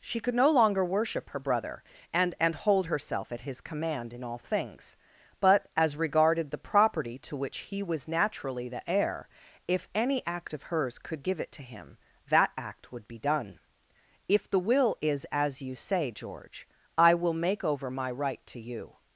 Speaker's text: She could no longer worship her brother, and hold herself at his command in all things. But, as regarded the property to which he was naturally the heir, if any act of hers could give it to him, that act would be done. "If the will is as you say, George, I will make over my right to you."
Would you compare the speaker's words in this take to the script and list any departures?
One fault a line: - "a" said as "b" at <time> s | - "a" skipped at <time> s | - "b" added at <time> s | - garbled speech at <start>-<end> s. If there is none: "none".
- "and" added at 2.4 s